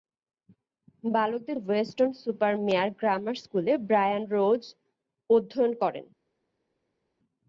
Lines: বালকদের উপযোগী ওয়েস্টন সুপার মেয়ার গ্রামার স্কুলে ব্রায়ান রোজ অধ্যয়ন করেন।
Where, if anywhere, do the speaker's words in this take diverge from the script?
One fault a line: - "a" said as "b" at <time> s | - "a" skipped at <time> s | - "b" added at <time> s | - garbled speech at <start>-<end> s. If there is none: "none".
- "উপযোগী" skipped at 1.6 s